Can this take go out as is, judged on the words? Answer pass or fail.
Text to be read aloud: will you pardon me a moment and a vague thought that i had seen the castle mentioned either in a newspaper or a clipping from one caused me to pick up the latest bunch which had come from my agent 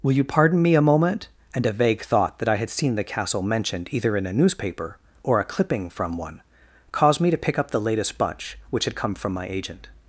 pass